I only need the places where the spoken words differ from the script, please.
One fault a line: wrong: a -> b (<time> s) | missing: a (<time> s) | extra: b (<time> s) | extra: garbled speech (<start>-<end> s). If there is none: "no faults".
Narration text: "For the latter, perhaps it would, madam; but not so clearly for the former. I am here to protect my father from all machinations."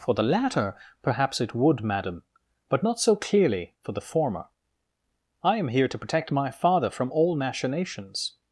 no faults